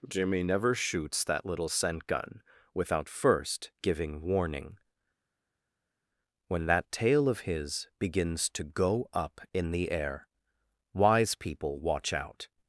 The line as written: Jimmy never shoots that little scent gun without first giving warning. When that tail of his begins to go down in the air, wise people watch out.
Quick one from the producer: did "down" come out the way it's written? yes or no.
no